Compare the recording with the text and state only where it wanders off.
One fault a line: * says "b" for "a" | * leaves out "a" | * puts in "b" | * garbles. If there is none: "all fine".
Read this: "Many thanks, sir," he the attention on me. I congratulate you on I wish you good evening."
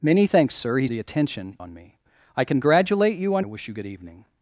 all fine